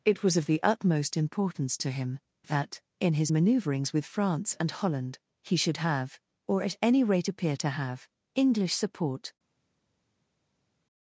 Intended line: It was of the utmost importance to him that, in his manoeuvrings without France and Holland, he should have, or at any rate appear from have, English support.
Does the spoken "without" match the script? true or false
false